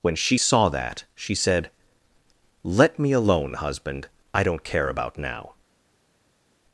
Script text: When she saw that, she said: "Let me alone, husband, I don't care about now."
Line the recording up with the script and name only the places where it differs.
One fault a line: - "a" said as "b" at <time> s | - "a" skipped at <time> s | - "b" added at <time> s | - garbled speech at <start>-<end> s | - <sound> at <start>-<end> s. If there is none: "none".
none